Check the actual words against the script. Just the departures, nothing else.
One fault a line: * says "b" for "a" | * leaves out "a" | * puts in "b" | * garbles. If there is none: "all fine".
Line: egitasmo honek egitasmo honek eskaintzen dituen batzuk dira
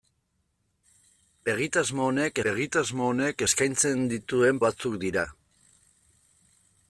all fine